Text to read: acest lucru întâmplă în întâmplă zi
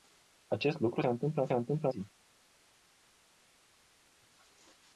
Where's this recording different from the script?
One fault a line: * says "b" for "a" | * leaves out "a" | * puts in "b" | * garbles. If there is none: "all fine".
all fine